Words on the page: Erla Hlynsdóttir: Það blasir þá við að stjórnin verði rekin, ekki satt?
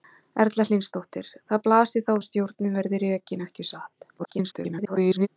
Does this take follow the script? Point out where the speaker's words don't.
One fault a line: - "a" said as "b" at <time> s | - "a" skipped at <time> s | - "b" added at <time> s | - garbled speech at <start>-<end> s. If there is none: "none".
- "við" skipped at 2.1 s
- garbled speech at 4.2-5.3 s